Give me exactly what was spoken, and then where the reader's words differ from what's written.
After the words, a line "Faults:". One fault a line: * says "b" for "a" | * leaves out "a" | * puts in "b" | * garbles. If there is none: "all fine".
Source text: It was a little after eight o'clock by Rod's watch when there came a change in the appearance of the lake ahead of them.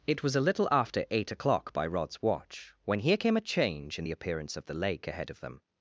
It was a little after eight o'clock by Rod's watch when here came a change in the appearance of the lake ahead of them.
Faults:
* says "here" for "there"